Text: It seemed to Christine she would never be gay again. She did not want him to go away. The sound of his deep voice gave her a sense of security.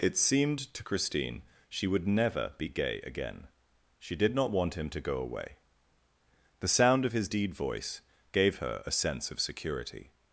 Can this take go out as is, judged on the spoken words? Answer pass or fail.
fail